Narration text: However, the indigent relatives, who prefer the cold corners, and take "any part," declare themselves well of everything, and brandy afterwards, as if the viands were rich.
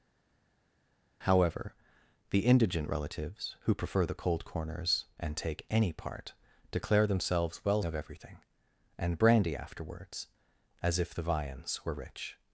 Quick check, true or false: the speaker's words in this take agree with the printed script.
true